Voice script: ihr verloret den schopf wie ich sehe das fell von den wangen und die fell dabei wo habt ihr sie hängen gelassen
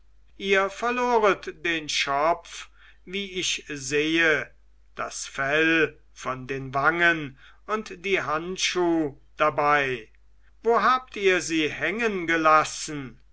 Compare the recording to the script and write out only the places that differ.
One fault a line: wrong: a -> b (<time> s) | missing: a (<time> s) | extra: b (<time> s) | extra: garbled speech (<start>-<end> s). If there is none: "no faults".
wrong: fell -> handschuh (8.2 s)